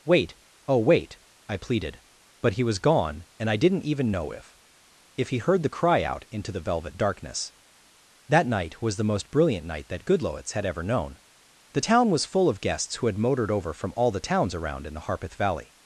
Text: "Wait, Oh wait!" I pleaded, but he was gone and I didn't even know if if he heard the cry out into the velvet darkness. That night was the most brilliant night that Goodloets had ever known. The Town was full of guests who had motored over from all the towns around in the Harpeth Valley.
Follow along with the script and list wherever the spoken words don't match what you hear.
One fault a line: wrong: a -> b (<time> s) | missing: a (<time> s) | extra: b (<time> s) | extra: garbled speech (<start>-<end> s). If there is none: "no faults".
no faults